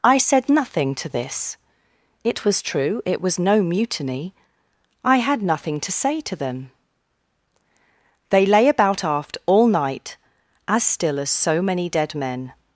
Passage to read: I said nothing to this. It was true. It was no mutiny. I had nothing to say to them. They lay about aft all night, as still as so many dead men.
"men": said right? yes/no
yes